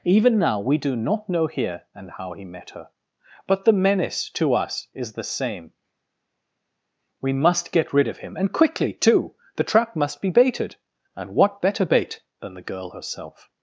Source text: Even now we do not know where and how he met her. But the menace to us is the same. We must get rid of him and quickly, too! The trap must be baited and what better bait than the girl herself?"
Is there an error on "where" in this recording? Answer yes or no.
yes